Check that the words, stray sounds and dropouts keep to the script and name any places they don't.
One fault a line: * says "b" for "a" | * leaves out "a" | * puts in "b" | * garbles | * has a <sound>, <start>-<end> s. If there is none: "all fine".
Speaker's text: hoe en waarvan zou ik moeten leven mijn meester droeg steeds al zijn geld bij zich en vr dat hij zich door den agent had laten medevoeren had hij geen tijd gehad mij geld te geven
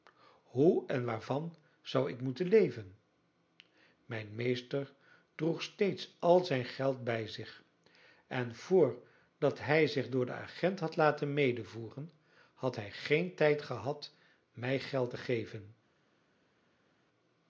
all fine